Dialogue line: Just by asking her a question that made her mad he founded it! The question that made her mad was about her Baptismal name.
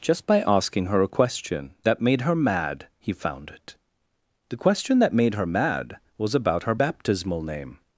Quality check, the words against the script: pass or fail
fail